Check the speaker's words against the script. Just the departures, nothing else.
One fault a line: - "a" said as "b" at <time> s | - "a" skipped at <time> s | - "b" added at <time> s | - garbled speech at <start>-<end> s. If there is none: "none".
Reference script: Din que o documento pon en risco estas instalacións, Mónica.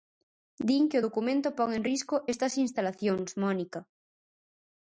none